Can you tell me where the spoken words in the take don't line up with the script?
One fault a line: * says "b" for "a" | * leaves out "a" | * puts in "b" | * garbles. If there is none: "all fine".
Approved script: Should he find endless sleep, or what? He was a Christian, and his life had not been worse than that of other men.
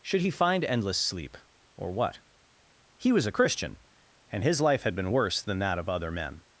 * leaves out "not"